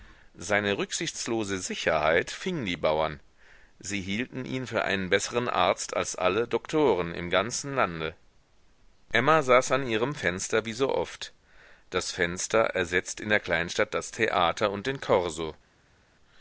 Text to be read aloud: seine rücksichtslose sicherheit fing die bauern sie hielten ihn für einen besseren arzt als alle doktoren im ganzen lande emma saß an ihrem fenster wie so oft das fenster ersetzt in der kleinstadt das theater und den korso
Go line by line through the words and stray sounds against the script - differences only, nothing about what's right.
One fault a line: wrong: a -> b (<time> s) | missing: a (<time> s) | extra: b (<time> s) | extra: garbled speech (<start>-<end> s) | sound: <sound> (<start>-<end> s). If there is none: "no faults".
no faults